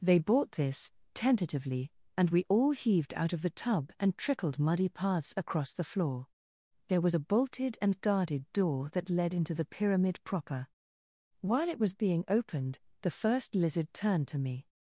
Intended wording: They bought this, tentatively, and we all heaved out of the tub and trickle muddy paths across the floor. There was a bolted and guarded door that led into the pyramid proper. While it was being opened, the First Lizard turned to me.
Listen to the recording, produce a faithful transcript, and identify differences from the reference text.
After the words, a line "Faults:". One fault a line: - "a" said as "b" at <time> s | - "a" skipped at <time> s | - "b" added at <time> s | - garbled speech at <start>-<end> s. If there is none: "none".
They bought this, tentatively, and we all heaved out of the tub and trickled muddy paths across the floor. There was a bolted and guarded door that led into the pyramid proper. While it was being opened, the First Lizard turned to me.
Faults:
- "trickle" said as "trickled" at 4.2 s